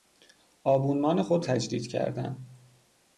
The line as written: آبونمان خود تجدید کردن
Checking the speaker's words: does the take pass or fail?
pass